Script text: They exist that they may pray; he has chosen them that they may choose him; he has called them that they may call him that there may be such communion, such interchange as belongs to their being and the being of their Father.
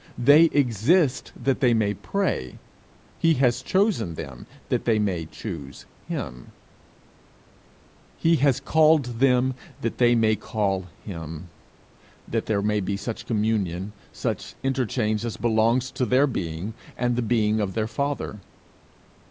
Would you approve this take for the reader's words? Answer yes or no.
yes